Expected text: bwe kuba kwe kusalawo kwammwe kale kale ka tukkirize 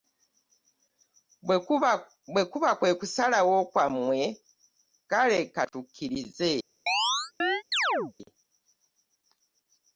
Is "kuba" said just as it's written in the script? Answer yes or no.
yes